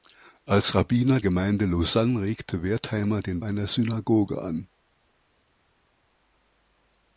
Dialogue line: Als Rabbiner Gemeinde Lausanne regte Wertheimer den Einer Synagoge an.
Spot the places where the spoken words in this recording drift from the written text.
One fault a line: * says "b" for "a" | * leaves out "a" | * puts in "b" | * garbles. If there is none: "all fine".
all fine